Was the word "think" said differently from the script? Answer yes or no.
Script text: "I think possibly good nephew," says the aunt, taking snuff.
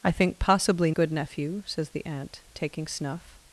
no